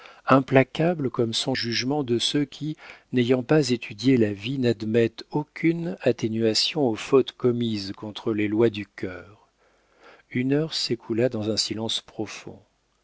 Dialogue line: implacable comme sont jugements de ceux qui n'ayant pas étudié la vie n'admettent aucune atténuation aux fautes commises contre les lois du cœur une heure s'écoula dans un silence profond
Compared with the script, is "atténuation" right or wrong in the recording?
right